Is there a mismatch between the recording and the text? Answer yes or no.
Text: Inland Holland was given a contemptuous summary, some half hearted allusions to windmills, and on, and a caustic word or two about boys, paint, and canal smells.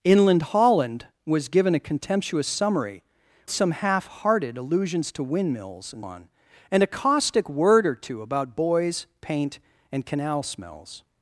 no